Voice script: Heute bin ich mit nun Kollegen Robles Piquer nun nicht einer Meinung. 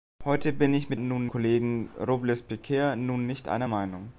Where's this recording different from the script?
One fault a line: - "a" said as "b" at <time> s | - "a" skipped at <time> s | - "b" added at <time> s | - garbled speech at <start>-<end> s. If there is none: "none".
none